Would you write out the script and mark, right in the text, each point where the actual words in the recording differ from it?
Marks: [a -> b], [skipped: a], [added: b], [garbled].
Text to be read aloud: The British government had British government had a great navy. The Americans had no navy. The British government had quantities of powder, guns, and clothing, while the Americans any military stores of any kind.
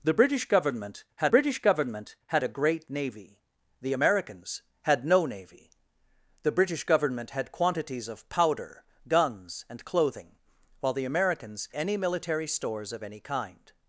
The British government had British government had a great navy. The Americans had no navy. The British government had quantities of powder, guns, and clothing, while the Americans any military stores of any kind.